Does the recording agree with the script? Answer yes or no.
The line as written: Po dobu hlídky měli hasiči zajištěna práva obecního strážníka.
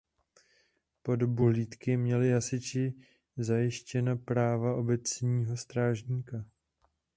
yes